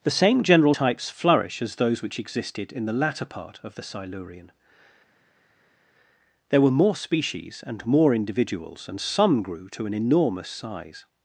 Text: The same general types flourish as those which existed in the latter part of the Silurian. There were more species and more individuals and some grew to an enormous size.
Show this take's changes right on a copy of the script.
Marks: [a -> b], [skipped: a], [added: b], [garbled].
The same general types flourish as those which existed in the latter part of the Silurian. There were more species and more individuals and some grew to an enormous size.